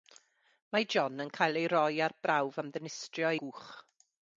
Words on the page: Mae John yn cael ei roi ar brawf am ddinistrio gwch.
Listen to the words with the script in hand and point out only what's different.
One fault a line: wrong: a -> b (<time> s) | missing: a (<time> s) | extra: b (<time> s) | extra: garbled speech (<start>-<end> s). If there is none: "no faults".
no faults